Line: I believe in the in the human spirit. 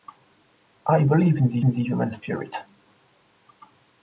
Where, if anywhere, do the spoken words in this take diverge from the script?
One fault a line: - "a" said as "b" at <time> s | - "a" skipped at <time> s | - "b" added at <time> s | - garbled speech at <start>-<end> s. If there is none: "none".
none